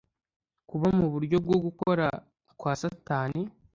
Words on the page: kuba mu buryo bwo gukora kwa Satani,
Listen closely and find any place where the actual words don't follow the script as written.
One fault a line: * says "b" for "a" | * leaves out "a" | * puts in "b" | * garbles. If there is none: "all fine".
all fine